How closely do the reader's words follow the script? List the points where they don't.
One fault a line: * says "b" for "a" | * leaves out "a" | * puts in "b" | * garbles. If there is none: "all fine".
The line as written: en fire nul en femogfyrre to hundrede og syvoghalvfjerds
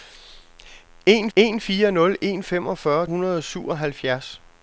* puts in "en"
* leaves out "to"